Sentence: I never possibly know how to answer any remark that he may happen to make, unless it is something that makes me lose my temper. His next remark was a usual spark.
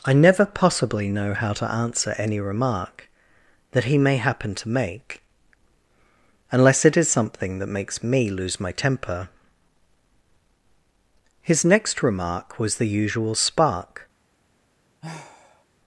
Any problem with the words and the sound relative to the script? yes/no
yes